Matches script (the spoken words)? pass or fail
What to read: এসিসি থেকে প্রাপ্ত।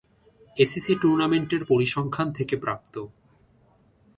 fail